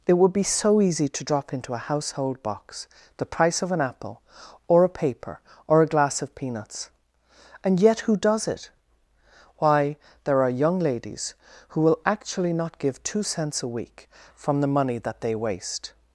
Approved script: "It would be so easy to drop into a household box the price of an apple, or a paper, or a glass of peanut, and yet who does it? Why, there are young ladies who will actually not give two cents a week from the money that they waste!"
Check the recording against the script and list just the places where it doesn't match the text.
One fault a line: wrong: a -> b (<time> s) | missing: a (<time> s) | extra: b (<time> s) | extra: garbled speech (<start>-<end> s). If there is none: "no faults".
wrong: peanut -> peanuts (6.3 s)